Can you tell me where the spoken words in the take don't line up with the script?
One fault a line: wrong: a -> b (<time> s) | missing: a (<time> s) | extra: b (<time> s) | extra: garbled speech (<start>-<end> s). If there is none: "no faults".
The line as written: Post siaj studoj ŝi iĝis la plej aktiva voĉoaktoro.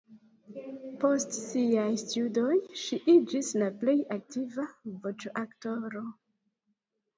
no faults